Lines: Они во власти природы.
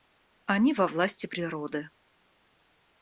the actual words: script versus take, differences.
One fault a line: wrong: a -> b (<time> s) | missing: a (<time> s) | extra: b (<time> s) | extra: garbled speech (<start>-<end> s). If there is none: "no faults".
no faults